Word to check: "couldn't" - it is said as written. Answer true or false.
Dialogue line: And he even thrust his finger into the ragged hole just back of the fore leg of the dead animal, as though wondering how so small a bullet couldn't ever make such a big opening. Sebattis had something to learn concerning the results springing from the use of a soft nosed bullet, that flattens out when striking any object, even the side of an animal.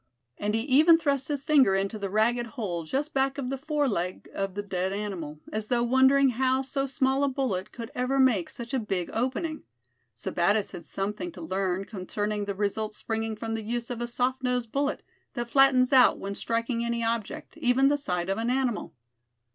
false